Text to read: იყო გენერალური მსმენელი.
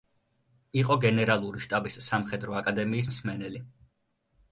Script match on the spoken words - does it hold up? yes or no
no